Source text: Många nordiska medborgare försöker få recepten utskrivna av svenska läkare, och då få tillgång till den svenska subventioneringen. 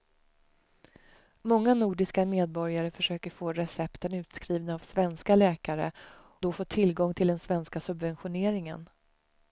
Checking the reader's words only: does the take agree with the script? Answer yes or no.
no